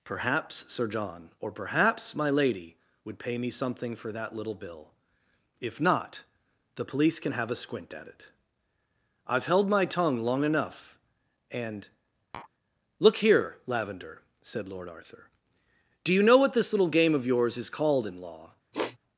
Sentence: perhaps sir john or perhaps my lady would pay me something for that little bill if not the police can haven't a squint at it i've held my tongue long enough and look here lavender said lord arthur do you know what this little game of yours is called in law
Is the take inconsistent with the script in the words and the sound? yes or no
yes